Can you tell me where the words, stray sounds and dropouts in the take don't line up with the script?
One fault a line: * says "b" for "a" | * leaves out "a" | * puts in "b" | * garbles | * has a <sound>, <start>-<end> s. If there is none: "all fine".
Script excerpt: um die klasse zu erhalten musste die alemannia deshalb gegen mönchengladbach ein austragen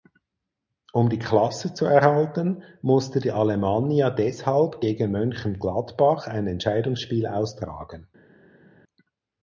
* puts in "entscheidungsspiel"